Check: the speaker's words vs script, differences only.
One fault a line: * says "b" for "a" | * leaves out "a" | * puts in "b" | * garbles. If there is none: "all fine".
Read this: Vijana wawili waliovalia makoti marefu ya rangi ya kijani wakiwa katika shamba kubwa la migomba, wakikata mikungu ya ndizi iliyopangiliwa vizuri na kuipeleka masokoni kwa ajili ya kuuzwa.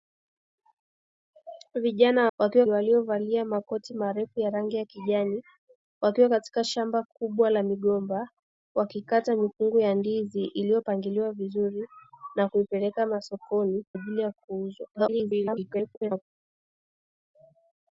* says "wakiwa" for "wawili"
* leaves out "kwa"
* garbles